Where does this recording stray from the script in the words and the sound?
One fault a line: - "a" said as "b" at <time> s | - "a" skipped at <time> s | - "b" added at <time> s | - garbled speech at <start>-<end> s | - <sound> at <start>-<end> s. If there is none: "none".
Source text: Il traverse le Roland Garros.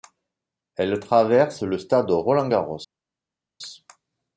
- "Il" said as "Elle" at 0.8 s
- "stade" added at 1.8 s